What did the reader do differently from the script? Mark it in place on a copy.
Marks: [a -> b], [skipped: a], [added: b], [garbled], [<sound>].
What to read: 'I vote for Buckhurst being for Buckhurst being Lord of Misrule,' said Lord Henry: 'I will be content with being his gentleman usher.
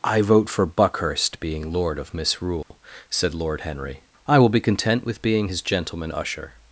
'I vote for Buckhurst being [skipped: for Buckhurst being] Lord of Misrule,' [dropout] said Lord Henry: 'I will be content with being his gentleman usher.